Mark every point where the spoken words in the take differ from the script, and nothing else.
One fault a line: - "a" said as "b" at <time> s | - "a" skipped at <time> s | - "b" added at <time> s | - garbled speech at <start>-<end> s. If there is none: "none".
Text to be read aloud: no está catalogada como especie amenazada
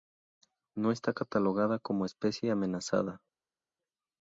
none